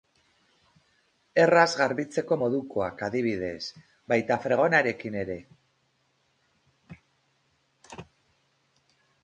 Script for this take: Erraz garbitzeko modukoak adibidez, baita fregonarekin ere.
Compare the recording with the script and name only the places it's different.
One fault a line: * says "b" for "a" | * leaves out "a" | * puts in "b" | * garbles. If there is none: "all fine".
all fine